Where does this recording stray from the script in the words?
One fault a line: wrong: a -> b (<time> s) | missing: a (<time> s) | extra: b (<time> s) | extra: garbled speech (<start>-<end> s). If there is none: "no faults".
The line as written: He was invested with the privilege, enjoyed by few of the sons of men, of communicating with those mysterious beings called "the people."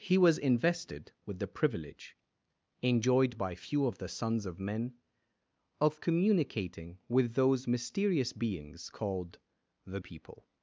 no faults